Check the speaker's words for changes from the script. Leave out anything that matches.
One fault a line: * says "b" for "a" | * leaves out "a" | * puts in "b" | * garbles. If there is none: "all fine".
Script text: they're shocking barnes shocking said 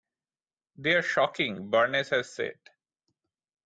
* says "has" for "shocking"